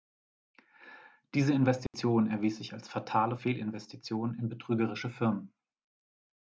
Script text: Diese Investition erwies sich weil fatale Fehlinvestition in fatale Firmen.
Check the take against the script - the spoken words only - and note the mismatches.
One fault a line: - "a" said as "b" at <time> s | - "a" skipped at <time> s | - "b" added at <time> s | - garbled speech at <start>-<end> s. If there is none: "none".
- "weil" said as "als" at 2.7 s
- "fatale" said as "betrügerische" at 4.5 s